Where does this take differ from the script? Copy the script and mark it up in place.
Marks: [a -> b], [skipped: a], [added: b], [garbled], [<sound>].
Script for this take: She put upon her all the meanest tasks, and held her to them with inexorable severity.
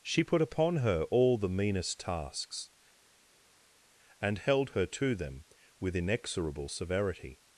She put upon her all the meanest tasks, and held her to them with inexorable severity.